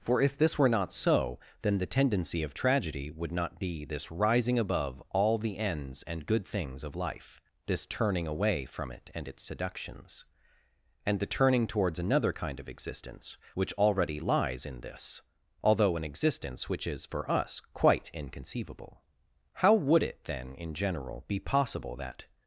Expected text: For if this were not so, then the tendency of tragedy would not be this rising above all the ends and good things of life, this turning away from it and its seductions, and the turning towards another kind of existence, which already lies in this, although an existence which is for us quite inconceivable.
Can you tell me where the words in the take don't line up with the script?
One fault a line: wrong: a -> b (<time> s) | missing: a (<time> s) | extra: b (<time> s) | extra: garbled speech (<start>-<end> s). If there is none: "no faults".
extra: How would it then in general be possible that (19.5 s)